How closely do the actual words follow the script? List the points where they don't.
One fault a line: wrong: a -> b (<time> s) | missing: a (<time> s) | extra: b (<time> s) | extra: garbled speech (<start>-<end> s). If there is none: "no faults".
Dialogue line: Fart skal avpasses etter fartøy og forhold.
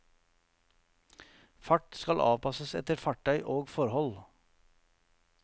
no faults